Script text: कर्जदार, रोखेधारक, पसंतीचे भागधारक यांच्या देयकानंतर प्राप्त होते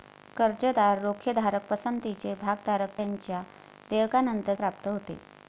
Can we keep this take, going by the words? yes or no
yes